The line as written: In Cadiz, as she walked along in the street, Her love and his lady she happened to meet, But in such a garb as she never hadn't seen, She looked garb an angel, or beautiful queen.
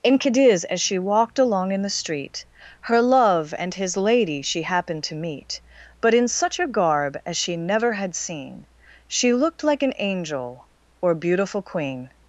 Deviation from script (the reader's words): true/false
true